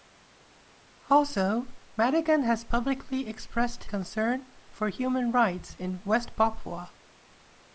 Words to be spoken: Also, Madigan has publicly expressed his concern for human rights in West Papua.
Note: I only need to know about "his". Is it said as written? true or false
false